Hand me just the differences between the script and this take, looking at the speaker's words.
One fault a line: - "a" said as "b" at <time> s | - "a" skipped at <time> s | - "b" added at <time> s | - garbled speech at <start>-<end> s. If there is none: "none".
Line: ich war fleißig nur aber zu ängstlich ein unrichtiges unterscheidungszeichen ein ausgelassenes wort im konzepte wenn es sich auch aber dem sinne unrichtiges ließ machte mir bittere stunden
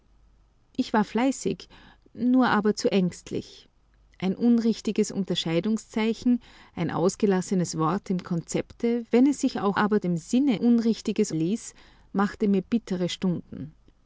none